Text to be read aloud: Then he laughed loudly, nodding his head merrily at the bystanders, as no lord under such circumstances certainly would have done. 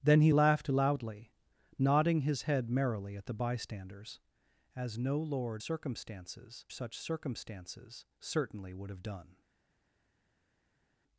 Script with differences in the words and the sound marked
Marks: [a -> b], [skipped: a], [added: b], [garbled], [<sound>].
Then he laughed loudly, nodding his head merrily at the bystanders, as no lord [under -> circumstances] such circumstances certainly would have done.